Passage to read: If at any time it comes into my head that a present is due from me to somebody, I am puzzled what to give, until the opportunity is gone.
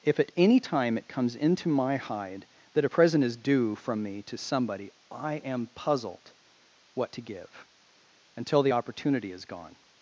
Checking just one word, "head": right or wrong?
wrong